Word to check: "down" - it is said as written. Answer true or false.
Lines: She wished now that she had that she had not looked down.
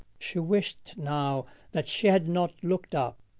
false